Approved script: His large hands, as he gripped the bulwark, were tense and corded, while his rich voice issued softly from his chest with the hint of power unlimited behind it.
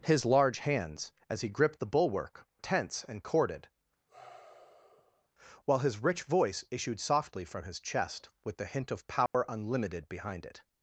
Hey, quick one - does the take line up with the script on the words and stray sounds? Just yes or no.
no